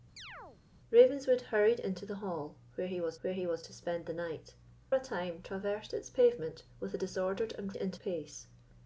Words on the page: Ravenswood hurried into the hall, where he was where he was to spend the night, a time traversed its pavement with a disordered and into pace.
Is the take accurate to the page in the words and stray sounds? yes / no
no